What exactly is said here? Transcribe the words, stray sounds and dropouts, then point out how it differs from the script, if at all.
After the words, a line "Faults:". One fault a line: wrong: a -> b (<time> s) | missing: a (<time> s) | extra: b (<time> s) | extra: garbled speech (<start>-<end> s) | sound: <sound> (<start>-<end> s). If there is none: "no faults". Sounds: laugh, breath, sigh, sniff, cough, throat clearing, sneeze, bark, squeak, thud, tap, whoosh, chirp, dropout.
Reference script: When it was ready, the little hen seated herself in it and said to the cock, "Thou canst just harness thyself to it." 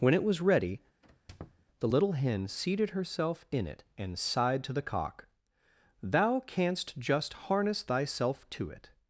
When it was ready, the little hen seated herself in it and sighed to the cock, "Thou canst just harness thyself to it."
Faults:
sound: squeak (1.0-1.7 s)
wrong: said -> sighed (4.2 s)